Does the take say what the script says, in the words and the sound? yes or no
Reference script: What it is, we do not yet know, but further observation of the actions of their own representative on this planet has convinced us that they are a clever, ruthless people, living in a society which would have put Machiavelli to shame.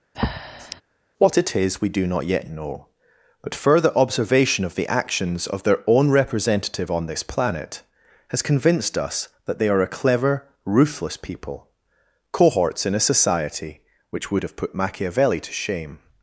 no